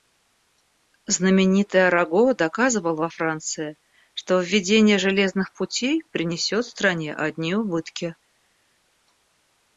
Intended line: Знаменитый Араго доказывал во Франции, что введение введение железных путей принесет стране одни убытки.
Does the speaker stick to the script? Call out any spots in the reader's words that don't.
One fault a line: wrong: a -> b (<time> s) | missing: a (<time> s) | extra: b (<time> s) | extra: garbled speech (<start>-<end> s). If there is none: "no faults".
missing: введение (5.0 s)